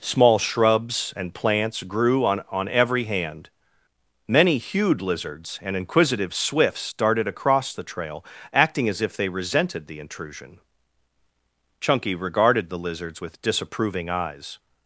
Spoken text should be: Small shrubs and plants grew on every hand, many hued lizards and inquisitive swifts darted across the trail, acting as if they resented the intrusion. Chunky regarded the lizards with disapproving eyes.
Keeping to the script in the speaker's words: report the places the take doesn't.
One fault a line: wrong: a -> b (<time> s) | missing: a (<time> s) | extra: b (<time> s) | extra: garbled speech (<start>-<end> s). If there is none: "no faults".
extra: on (2.5 s)